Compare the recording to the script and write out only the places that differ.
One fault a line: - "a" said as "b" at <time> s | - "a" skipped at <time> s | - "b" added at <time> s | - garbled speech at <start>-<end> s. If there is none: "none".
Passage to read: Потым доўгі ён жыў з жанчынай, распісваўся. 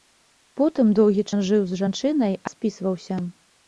none